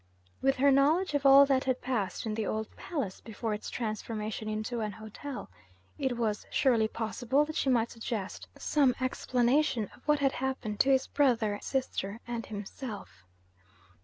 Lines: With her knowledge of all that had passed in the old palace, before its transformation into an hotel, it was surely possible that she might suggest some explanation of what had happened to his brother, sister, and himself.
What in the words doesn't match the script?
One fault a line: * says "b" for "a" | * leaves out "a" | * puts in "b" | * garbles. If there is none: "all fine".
all fine